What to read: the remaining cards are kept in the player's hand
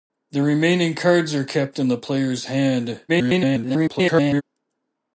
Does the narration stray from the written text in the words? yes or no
yes